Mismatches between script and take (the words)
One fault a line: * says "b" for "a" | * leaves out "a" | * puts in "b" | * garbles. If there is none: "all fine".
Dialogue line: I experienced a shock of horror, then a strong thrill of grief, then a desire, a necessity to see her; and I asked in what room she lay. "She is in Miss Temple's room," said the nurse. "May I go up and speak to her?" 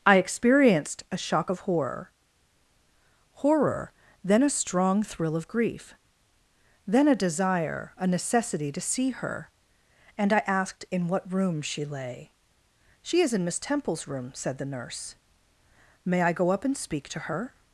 * puts in "horror"